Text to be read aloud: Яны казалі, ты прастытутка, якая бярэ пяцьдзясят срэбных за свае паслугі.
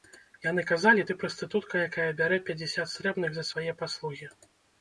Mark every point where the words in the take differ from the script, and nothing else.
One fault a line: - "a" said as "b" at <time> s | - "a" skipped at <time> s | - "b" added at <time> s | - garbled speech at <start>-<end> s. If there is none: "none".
none